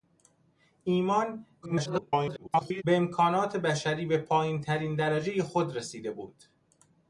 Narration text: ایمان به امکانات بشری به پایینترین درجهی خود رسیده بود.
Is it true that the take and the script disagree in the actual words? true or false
true